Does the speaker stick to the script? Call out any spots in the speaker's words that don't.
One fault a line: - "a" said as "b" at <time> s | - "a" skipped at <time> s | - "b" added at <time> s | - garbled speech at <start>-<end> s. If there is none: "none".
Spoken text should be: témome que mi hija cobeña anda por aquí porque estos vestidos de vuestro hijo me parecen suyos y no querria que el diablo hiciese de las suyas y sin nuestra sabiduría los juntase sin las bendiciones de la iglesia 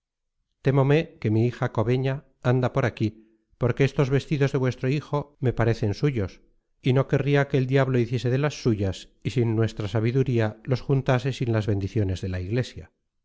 none